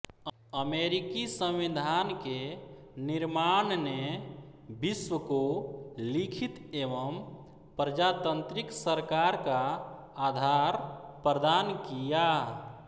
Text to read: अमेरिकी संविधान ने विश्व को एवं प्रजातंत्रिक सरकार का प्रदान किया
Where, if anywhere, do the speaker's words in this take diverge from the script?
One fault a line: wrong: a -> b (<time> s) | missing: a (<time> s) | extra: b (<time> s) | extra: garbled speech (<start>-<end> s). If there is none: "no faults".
extra: के निर्माण (2.2 s)
extra: लिखित (6.0 s)
extra: आधार (10.3 s)